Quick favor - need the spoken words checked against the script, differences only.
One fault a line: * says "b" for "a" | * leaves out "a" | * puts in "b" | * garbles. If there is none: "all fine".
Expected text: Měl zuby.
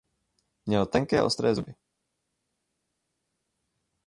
* puts in "tenké ostré"